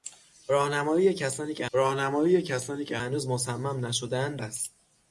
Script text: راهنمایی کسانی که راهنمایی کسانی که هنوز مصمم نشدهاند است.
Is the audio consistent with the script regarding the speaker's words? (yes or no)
yes